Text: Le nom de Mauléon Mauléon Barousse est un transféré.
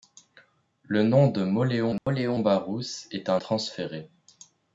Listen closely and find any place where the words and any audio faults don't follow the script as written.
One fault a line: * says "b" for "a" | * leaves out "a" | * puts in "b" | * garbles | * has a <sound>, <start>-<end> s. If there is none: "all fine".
* has a dropout, 2.0-2.1 s